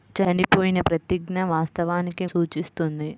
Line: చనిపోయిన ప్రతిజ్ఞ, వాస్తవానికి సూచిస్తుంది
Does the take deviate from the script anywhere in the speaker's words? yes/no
no